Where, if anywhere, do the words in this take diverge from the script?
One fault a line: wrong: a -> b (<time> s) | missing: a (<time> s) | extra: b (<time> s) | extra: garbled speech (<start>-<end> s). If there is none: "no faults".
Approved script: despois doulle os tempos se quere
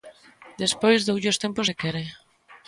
no faults